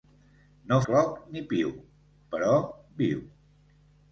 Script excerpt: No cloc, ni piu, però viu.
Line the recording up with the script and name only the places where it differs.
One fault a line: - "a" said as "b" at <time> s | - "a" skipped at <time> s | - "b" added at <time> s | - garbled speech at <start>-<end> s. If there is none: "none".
none